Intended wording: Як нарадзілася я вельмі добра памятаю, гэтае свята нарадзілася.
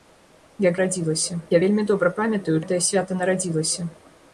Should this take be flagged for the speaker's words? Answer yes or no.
no